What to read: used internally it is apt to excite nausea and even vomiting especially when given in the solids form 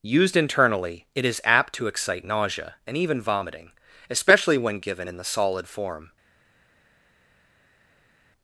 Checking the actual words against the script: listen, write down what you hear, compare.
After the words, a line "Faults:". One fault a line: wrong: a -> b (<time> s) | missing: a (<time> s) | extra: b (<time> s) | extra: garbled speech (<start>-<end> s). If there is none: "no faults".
used internally it is apt to excite nausea and even vomiting especially when given in the solid form
Faults:
wrong: solids -> solid (5.2 s)